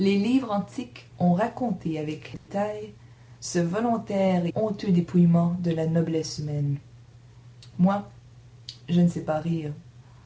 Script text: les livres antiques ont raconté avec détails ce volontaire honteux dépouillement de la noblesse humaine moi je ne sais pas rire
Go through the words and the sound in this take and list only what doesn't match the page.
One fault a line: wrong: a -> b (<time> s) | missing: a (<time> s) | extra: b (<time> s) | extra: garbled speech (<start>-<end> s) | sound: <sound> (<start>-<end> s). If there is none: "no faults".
sound: dropout (2.4-2.5 s)